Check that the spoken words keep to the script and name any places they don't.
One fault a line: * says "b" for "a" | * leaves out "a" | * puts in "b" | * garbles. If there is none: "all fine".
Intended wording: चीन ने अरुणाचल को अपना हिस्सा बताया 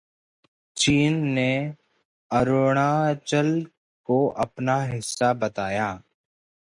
all fine